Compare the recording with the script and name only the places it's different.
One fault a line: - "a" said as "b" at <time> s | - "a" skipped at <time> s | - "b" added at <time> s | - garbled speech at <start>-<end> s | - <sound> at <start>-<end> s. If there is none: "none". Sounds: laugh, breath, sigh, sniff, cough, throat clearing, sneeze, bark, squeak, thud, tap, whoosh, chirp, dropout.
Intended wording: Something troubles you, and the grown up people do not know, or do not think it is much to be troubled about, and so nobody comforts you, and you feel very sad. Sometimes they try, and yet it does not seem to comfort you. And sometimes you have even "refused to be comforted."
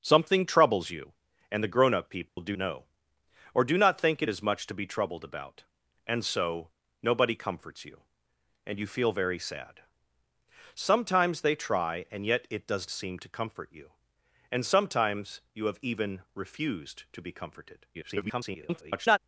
- dropout at 2.3-2.4 s
- "not" skipped at 2.6 s
- "not" skipped at 12.9 s
- garbled speech at 17.9-19.2 s